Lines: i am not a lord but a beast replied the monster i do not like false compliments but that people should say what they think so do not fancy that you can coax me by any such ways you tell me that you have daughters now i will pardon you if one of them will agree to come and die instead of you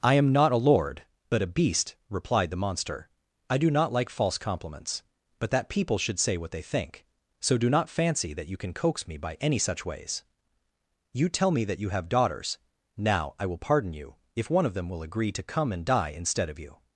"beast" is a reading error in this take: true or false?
false